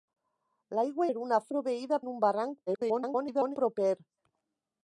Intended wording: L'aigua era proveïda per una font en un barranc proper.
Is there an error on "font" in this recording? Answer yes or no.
yes